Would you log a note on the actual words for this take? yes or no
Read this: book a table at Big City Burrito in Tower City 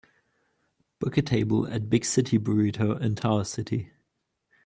no